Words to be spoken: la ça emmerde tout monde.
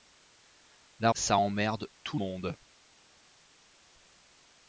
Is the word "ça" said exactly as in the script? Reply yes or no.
yes